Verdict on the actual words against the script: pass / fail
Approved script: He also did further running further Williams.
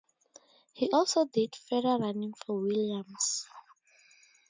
fail